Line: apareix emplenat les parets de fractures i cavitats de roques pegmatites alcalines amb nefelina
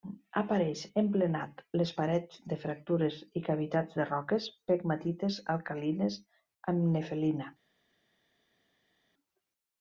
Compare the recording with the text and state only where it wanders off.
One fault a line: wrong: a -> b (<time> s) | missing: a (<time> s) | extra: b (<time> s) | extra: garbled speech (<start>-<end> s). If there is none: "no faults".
no faults